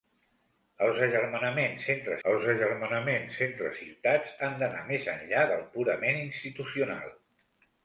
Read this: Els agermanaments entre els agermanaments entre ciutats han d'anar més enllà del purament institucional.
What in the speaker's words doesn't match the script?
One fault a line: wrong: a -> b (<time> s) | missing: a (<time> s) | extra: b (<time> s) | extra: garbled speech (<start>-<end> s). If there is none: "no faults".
no faults